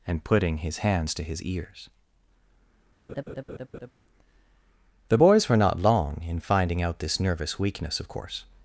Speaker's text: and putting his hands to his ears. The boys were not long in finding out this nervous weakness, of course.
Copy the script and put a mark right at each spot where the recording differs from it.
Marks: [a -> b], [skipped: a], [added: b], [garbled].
and putting his hands to his ears. The boys were not long in finding out this nervous weakness, of course.